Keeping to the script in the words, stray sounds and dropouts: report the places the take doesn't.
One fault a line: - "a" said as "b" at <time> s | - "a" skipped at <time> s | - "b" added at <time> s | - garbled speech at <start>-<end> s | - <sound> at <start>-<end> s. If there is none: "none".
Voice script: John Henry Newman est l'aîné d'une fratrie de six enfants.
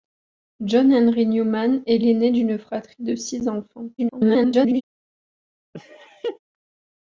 - garbled speech at 4.0-4.8 s
- laugh at 5.7-6.4 s